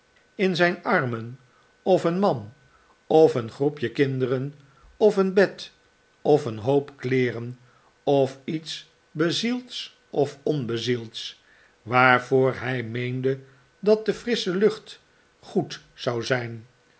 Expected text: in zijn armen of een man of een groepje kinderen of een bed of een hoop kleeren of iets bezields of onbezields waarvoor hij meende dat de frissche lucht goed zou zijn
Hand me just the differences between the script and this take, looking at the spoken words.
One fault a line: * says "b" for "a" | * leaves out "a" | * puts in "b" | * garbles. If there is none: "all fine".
all fine